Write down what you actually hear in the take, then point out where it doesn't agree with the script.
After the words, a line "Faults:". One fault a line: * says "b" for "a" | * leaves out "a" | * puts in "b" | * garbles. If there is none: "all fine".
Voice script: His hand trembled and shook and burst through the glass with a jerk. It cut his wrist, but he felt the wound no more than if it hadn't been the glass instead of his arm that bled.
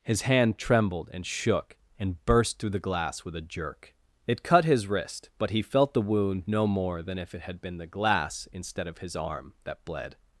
His hand trembled and shook and burst through the glass with a jerk. It cut his wrist, but he felt the wound no more than if it had been the glass instead of his arm that bled.
Faults:
* says "had" for "hadn't"